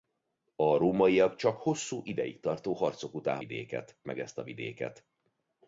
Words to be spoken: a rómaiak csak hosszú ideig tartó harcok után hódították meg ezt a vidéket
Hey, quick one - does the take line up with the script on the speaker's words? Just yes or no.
no